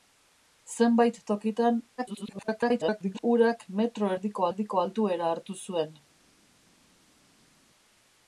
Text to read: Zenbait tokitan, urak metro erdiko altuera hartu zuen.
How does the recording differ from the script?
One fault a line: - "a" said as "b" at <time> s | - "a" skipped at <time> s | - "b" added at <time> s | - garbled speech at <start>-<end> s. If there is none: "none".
- garbled speech at 2.0-3.2 s
- "erdiko" added at 4.5 s